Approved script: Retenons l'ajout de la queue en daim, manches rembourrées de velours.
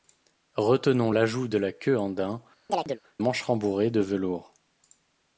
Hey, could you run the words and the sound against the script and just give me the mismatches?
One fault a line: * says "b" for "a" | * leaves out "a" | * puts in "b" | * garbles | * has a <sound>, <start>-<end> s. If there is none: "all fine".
* has a chirp, 2.7-3.0 s